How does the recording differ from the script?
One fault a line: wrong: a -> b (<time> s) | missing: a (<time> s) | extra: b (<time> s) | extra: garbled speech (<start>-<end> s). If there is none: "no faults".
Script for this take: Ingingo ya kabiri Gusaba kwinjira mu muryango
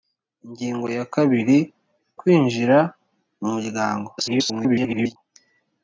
missing: Gusaba (1.6 s)
extra: garbled speech (4.2-5.2 s)